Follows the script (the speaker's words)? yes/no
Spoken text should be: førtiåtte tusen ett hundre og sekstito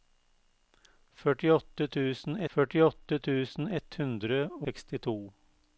no